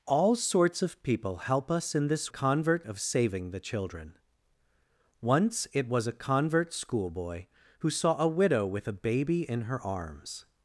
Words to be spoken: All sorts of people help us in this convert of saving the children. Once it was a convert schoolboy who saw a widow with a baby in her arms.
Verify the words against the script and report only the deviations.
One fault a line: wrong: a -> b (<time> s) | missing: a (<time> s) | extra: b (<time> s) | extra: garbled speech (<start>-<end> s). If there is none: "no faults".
no faults